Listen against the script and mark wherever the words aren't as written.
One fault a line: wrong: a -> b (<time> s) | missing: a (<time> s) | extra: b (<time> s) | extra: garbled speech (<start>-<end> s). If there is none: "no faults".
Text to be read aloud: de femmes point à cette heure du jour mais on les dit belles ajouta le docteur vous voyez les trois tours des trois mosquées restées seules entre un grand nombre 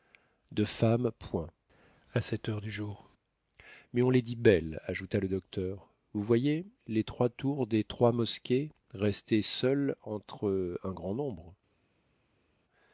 no faults